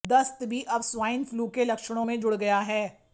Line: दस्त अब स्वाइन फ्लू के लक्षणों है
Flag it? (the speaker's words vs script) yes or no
yes